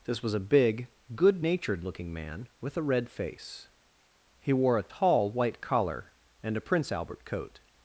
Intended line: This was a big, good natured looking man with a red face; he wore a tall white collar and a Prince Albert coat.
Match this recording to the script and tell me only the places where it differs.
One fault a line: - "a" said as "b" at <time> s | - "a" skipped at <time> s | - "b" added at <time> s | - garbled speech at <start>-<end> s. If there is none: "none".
none